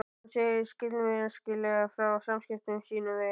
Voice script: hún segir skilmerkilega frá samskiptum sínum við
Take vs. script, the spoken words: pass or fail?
fail